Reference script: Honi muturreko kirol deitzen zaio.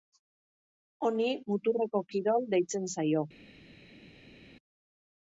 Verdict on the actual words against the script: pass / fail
pass